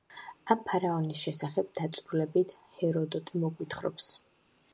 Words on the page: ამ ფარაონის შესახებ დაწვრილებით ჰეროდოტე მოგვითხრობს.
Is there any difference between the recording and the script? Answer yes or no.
no